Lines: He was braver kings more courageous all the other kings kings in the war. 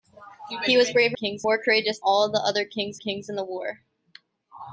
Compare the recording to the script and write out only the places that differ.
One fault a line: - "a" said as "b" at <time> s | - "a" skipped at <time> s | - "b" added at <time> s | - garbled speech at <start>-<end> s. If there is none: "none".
none